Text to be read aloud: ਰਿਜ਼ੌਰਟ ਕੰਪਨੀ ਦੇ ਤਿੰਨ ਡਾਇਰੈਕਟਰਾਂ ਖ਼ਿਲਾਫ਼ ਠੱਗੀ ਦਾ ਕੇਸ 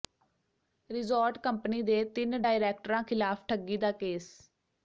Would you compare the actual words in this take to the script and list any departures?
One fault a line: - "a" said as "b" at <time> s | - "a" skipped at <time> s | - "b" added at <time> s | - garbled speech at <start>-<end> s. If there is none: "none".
none